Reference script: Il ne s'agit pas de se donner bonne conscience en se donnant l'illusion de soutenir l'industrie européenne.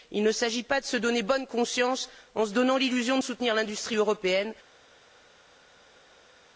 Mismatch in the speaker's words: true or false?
false